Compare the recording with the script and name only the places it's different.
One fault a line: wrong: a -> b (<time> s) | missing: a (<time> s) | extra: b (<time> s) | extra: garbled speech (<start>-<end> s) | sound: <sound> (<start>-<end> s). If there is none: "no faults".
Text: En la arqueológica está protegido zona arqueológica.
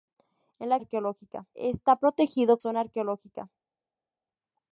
no faults